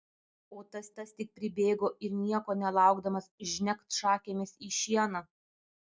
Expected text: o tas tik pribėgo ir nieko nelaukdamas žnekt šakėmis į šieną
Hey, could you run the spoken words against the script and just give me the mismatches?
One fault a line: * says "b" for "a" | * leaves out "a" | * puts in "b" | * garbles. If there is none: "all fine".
* puts in "tas"